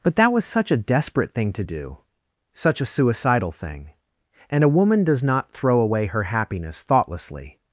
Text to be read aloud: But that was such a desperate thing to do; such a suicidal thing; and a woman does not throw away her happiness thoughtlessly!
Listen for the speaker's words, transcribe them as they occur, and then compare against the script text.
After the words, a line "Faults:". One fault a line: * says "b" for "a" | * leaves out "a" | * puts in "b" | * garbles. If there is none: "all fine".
But that was such a desperate thing to do; such a suicidal thing; and a woman does not throw away her happiness thoughtlessly!
Faults:
all fine